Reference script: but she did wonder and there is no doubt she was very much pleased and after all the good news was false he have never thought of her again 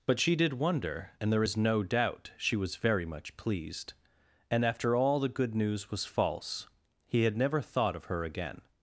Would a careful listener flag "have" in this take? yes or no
yes